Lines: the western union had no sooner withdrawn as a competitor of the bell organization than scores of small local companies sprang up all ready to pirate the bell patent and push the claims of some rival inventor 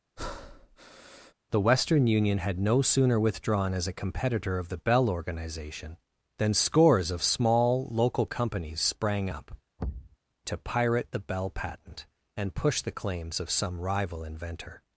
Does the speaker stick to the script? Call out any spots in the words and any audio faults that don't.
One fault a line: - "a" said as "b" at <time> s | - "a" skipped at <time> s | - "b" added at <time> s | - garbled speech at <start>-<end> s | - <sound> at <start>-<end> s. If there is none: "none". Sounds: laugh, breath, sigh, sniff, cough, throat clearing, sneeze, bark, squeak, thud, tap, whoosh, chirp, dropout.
- breath at 0.2-1.3 s
- "all ready" skipped at 9.5 s
- thud at 9.8-10.2 s